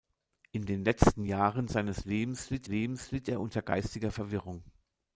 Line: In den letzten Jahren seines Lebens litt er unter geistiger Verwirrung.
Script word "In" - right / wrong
right